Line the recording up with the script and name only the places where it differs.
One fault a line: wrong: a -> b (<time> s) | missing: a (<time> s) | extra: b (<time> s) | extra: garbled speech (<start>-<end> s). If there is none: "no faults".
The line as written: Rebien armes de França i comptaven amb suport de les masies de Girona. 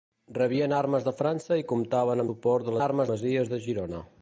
missing: amb (2.2 s)
wrong: les -> armes (2.8 s)